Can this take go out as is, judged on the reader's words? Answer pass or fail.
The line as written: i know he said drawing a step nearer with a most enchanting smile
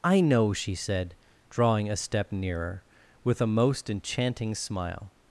fail